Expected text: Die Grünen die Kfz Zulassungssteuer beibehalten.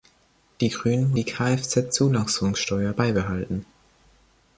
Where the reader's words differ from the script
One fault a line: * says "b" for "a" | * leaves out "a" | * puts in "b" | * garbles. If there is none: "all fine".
all fine